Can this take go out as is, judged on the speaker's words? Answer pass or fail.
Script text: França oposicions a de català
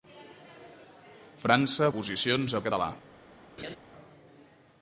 pass